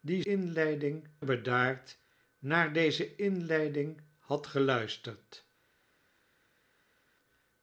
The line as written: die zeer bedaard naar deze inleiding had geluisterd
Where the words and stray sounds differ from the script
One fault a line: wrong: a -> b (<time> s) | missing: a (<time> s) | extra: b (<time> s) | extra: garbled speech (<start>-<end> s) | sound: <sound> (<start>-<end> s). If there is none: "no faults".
wrong: zeer -> inleiding (0.2 s)